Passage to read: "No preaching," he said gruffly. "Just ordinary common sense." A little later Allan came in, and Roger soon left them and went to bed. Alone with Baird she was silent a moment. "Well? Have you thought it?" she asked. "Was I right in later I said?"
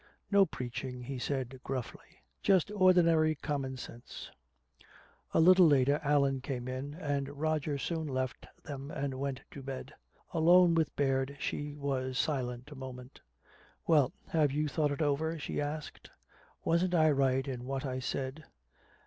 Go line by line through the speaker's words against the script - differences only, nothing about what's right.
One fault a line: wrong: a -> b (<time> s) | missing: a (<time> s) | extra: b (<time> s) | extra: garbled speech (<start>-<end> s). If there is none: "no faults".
extra: over (15.0 s)
wrong: Was -> Wasn't (16.6 s)
wrong: later -> what (17.6 s)